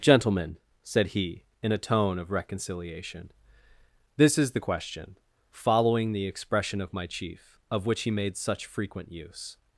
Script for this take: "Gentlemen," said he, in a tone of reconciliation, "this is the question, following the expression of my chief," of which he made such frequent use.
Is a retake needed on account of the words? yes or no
no